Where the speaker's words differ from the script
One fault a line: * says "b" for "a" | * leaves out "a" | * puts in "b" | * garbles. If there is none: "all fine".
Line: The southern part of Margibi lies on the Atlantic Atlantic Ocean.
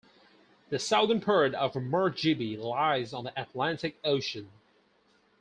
* leaves out "Atlantic"